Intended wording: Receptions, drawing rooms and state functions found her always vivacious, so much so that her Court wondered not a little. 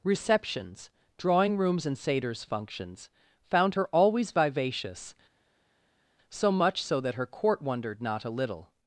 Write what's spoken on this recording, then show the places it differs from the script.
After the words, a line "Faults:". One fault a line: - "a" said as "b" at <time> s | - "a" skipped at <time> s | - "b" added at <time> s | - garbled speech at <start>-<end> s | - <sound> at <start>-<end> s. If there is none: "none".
Receptions, drawing rooms and satyrs functions found her always vivacious, so much so that her Court wondered not a little.
Faults:
- "state" said as "satyrs" at 1.9 s